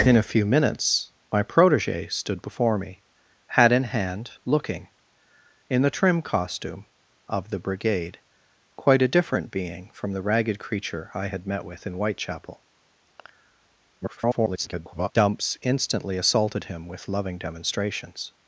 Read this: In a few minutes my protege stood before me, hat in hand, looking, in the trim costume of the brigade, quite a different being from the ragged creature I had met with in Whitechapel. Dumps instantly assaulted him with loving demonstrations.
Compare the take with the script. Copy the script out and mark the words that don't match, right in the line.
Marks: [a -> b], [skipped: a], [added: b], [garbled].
In a few minutes my protege stood before me, hat in hand, looking, in the trim costume of the brigade, quite a different being from the ragged creature I had met with in Whitechapel. [garbled] Dumps instantly assaulted him with loving demonstrations.